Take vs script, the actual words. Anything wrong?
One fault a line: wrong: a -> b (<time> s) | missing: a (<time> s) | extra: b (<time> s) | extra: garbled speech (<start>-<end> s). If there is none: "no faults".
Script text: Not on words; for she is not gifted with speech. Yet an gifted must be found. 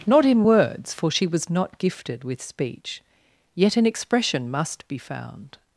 wrong: on -> in (0.2 s)
wrong: is -> was (1.3 s)
wrong: gifted -> expression (3.9 s)